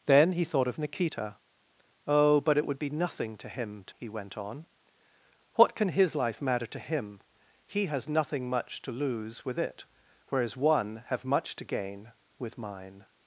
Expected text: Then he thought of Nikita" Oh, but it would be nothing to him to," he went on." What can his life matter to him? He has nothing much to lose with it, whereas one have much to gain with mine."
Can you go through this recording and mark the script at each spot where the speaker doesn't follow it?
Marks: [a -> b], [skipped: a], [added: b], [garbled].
Then he thought of Nikita" Oh, but it would be nothing to him to," he went on." What can his life matter to him? He has nothing much to lose with it, whereas one have much to gain with mine."